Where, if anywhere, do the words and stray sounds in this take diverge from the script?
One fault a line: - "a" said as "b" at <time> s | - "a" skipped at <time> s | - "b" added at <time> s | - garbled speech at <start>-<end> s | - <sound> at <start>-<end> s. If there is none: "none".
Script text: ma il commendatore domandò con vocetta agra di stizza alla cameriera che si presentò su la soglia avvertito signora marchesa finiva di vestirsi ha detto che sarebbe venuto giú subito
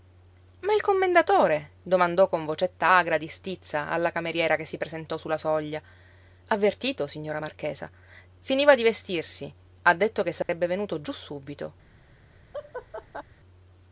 - dropout at 10.4-10.5 s
- laugh at 12.5-13.2 s